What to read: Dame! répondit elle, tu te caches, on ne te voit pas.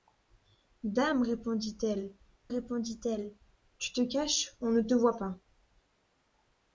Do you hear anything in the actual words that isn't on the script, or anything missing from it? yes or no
yes